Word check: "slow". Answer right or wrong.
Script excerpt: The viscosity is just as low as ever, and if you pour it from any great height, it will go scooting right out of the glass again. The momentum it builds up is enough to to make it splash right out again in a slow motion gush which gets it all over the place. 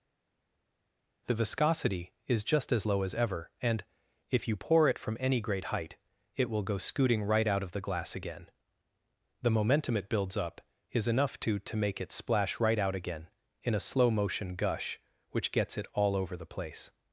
right